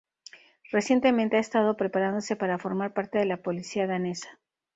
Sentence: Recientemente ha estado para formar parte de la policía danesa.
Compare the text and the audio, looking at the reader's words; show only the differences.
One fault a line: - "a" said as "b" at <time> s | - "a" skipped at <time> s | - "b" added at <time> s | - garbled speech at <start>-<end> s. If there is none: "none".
- "preparándose" added at 1.8 s